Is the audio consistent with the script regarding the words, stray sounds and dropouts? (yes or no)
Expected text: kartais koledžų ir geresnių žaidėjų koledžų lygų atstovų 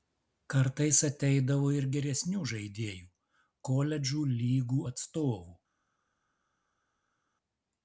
no